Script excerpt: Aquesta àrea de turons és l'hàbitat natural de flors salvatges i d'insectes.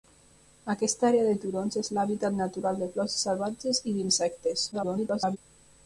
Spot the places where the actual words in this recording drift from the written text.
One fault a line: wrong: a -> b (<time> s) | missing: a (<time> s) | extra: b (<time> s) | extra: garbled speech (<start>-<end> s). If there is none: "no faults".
extra: garbled speech (4.7-5.4 s)